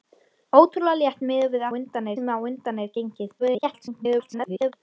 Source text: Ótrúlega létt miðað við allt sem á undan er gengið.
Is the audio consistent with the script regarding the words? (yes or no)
no